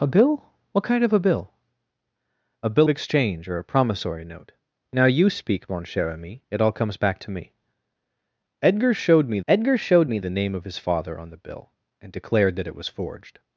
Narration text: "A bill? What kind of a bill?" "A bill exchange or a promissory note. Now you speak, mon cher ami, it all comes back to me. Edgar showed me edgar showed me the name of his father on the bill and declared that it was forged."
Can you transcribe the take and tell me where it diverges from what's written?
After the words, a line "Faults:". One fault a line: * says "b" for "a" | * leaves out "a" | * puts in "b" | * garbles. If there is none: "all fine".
"A bill? What kind of a bill?" "A bill exchange or a promissory note. Now you speak, mon cher ami, it all comes back to me. Edgar showed me edgar showed me the name of his father on the bill and declared that it was forged."
Faults:
all fine